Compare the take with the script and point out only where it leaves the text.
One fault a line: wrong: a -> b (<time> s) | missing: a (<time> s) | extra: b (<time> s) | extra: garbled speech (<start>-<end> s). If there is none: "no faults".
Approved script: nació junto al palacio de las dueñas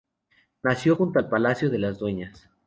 no faults